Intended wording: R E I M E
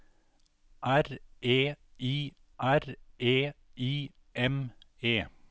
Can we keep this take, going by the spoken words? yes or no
no